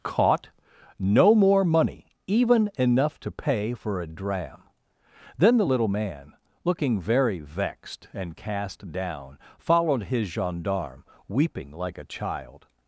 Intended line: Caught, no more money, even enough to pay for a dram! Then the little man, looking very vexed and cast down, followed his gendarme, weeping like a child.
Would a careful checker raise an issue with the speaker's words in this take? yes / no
no